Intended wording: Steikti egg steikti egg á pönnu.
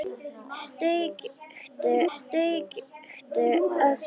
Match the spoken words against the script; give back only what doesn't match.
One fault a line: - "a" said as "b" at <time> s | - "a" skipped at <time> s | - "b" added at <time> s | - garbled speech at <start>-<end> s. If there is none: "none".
none